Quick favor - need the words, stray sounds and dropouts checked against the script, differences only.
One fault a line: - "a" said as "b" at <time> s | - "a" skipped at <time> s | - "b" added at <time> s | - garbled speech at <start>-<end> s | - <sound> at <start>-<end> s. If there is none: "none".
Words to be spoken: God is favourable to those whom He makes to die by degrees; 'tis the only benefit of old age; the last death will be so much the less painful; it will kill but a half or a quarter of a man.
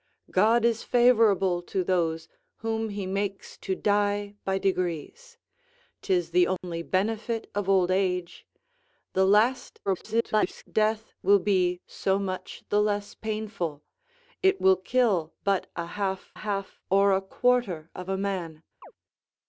- dropout at 6.6-6.6 s
- garbled speech at 9.9-10.6 s
- "half" added at 16.3 s
- chirp at 18.8-18.9 s